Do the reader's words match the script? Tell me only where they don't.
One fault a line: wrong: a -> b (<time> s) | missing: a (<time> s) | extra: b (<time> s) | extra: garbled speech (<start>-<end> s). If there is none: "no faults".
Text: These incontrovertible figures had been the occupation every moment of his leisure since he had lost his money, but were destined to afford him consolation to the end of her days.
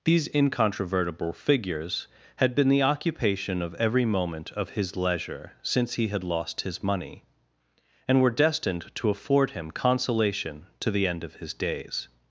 extra: of (3.6 s)
wrong: but -> and (8.1 s)
wrong: her -> his (11.3 s)